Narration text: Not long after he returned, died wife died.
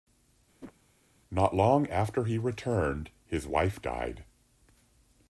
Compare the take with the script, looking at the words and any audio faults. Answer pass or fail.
fail